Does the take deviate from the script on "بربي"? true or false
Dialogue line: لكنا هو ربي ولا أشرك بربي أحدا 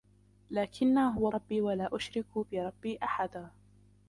false